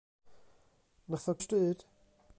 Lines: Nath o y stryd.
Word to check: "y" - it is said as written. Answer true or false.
true